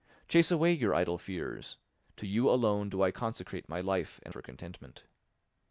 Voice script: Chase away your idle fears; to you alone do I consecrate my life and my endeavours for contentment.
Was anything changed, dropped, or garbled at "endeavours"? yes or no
yes